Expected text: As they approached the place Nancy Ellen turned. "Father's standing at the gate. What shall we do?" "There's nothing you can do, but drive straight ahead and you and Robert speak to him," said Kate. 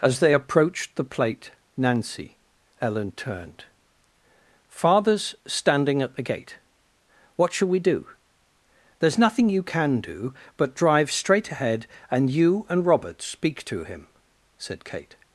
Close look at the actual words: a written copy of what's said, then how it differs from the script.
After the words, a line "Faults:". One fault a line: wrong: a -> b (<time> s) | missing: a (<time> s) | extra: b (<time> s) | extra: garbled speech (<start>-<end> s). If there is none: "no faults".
As they approached the plate Nancy Ellen turned. "Father's standing at the gate. What shall we do?" "There's nothing you can do, but drive straight ahead and you and Robert speak to him," said Kate.
Faults:
wrong: place -> plate (1.0 s)